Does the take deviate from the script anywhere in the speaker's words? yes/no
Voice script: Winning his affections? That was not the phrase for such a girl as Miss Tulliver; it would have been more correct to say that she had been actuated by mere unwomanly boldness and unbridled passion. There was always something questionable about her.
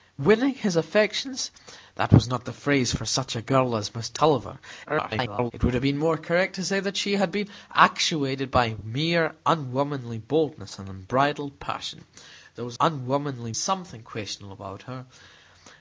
yes